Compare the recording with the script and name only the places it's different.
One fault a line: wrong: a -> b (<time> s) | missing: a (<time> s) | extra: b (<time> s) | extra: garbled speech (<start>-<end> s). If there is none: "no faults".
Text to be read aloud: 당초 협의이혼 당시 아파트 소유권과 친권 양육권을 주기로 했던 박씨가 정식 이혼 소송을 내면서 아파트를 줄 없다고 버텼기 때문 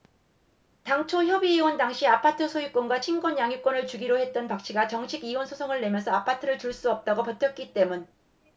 extra: 수 (6.7 s)